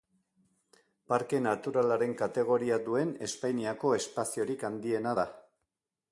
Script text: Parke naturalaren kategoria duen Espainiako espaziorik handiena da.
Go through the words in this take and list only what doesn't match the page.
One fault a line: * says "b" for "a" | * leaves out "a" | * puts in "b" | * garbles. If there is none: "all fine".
all fine